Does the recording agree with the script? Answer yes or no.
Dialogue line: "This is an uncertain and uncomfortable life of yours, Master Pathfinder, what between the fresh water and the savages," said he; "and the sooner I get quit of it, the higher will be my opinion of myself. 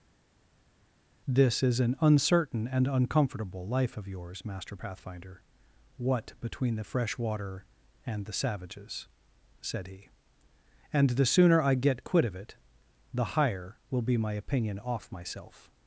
no